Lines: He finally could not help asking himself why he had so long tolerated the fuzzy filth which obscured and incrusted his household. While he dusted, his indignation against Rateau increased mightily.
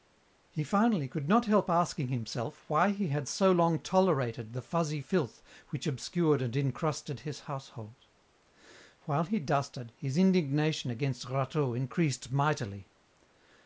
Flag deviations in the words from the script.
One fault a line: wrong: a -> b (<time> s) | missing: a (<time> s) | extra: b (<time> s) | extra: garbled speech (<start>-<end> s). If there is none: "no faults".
no faults